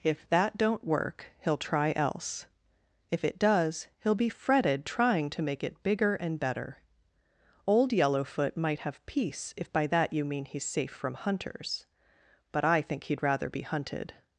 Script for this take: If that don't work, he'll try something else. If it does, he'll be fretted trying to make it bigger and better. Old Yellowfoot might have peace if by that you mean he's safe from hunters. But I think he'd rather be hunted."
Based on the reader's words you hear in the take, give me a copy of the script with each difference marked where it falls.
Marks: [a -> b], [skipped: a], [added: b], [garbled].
If that don't work, he'll try [skipped: something] else. If it does, he'll be fretted trying to make it bigger and better. Old Yellowfoot might have peace if by that you mean he's safe from hunters. But I think he'd rather be hunted."